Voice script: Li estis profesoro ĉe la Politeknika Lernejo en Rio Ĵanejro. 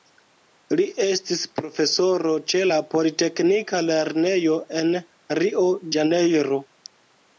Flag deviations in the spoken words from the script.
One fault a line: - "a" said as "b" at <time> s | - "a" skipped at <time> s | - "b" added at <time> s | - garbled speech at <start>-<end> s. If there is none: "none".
none